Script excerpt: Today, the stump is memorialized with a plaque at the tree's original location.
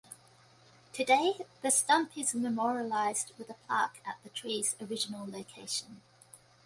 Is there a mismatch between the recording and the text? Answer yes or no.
no